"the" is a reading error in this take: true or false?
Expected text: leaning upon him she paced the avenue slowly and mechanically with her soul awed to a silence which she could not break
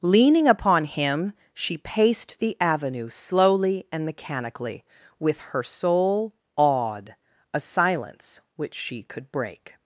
false